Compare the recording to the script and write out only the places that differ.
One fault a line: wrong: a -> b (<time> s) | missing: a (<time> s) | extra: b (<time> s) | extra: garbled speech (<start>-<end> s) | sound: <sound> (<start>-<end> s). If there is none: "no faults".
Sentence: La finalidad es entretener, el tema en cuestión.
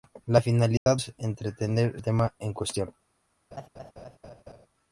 sound: dropout (0.8-0.9 s)
sound: laugh (3.5-4.7 s)